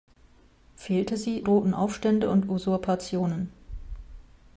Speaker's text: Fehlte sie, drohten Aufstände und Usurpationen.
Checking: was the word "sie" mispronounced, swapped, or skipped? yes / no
no